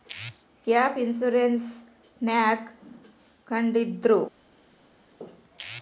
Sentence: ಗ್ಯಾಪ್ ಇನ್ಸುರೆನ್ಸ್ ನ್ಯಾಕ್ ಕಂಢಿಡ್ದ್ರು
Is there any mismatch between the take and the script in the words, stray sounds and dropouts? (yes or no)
no